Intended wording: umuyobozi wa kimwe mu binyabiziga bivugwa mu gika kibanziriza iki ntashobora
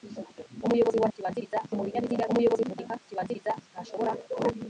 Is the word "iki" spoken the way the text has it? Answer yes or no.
no